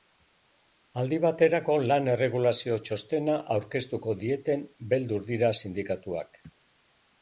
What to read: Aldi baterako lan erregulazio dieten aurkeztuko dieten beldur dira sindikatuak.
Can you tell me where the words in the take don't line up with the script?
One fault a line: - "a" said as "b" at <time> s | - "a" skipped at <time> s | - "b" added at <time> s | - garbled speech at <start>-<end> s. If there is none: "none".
- "dieten" said as "txostena" at 2.9 s